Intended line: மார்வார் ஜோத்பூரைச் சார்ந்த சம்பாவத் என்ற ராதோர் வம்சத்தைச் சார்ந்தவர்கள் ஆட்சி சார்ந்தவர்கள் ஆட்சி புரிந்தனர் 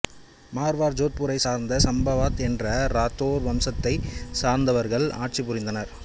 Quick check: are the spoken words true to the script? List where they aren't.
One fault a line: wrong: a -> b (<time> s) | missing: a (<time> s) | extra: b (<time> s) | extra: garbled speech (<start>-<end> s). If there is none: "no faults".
missing: சார்ந்தவர்கள் ஆட்சி (5.4 s)